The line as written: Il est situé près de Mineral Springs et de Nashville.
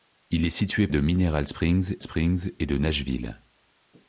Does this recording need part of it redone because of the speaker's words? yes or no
yes